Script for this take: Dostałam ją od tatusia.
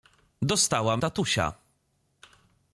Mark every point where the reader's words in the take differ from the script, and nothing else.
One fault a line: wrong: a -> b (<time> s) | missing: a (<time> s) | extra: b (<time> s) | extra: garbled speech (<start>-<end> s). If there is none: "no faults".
missing: ją od (1.0 s)